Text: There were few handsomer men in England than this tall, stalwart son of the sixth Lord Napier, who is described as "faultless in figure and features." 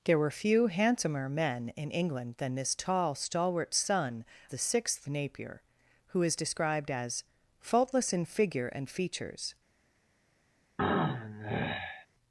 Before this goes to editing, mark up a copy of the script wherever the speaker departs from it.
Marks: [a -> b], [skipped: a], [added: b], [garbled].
There were few handsomer men in England than this tall, stalwart son [skipped: of] the sixth [skipped: Lord] Napier, who is described as "faultless in figure and features."